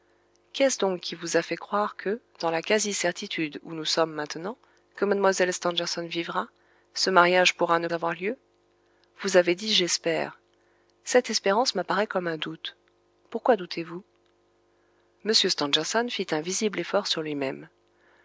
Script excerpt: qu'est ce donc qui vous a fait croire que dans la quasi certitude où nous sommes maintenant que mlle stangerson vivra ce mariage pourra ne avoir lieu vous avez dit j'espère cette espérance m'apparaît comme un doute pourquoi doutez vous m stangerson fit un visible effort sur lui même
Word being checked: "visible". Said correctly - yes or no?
yes